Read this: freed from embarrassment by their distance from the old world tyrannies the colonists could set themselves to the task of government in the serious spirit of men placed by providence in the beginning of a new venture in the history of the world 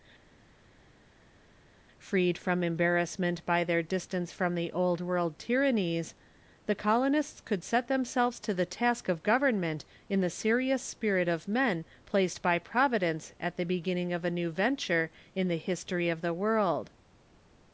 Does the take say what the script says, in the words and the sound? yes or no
no